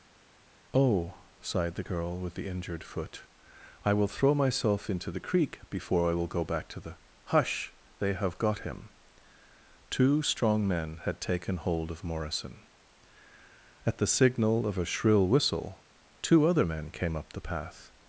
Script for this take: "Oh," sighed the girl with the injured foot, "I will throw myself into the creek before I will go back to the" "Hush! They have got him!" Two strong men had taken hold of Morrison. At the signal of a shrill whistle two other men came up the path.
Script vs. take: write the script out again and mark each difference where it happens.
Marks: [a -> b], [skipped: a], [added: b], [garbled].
"Oh," sighed the girl with the injured foot, "I will throw myself into the creek before I will go back to the" "Hush! They have got him!" Two strong men had taken hold of Morrison. At the signal of a shrill whistle two other men came up the path.